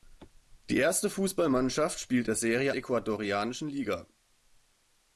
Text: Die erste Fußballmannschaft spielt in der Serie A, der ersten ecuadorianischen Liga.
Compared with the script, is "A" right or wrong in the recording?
wrong